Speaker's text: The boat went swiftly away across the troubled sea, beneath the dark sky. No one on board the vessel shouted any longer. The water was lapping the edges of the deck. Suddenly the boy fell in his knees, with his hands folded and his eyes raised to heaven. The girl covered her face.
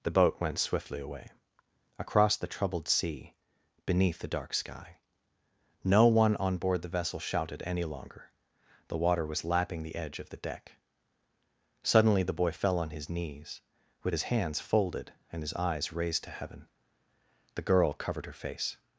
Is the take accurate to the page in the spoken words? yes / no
no